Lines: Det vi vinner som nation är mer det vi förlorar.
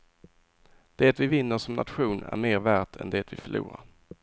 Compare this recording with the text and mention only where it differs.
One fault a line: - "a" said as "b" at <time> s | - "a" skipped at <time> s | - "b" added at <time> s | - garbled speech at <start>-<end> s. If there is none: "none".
- "värt än" added at 2.6 s